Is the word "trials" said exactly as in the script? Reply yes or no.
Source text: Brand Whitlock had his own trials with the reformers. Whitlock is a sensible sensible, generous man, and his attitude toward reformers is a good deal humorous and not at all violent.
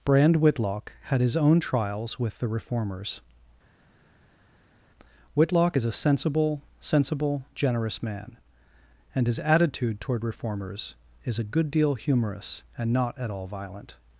yes